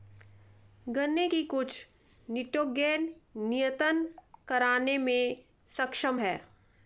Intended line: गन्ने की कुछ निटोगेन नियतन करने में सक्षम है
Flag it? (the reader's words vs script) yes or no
no